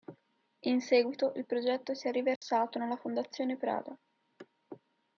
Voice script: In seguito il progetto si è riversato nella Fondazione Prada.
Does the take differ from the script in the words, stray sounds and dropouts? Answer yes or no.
yes